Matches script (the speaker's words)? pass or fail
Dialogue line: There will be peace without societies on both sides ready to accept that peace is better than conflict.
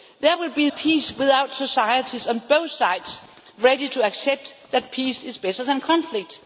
pass